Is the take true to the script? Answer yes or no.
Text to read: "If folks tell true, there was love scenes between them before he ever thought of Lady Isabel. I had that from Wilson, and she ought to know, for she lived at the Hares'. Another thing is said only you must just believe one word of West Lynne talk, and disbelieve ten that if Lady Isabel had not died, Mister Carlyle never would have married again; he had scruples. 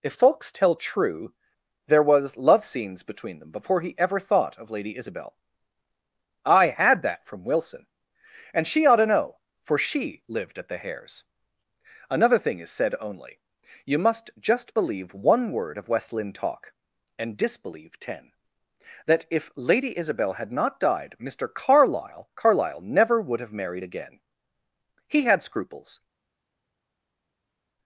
no